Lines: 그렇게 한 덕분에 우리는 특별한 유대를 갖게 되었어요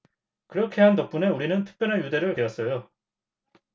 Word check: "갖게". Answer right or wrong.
wrong